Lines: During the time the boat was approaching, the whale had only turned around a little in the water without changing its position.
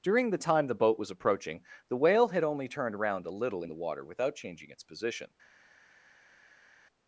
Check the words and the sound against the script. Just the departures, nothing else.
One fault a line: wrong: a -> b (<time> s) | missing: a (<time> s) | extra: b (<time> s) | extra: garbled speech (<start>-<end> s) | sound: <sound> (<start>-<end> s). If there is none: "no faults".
no faults